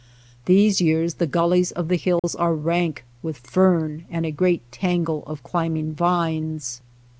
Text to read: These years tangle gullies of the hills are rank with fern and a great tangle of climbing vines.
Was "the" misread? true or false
false